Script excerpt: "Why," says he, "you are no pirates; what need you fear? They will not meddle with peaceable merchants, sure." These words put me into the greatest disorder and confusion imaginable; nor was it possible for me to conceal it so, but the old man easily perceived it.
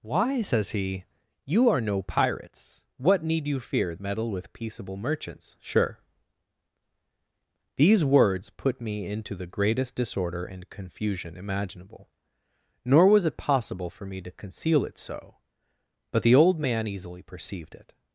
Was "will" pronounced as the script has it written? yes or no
no